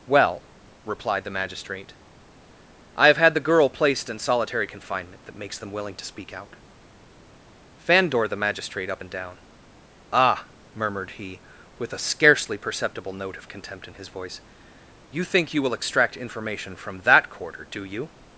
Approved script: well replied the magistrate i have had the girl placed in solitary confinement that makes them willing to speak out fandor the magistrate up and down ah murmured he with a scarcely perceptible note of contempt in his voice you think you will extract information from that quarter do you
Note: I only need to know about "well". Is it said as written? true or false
true